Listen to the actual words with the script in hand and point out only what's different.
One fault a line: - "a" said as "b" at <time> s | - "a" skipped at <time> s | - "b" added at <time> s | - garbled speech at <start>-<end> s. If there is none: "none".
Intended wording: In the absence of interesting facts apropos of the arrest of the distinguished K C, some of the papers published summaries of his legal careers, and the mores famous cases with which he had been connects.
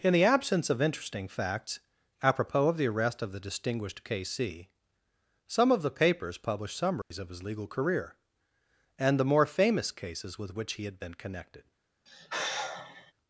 - "careers" said as "career" at 7.7 s
- "mores" said as "more" at 9.3 s
- "connects" said as "connected" at 11.1 s